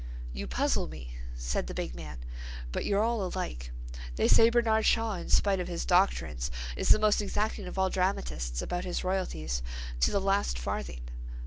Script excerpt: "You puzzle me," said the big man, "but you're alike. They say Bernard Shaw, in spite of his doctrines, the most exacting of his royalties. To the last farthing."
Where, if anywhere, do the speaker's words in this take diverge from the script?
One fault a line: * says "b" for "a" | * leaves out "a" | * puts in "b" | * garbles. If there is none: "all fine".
* puts in "all"
* puts in "is"
* puts in "all dramatists about"